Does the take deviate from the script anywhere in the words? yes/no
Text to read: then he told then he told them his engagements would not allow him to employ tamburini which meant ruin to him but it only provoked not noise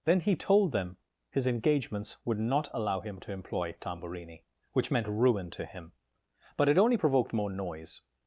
yes